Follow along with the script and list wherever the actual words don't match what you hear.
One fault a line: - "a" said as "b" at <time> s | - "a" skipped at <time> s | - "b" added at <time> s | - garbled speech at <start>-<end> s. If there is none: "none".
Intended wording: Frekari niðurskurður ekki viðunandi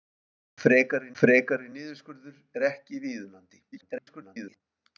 - "frekari" added at 1.2 s
- garbled speech at 3.7-4.6 s